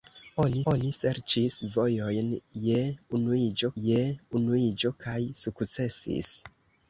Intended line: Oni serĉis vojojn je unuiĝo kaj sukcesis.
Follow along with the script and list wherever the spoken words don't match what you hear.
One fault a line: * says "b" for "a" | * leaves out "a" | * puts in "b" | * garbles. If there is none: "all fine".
* puts in "oni"
* puts in "je unuiĝo"